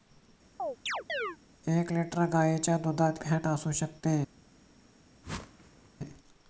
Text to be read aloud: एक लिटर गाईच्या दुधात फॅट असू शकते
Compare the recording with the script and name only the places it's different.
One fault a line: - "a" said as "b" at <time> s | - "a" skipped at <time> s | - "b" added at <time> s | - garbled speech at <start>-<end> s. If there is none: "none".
none